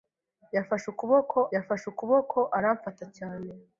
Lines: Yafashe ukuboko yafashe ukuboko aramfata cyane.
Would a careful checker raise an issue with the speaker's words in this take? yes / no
no